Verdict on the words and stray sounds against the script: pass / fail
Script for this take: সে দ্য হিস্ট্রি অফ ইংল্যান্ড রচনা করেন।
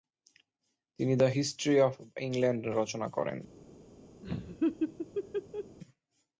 fail